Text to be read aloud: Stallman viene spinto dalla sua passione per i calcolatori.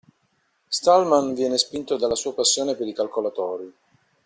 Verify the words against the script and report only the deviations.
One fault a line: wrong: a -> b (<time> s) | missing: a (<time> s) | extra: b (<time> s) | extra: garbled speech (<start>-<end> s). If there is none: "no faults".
no faults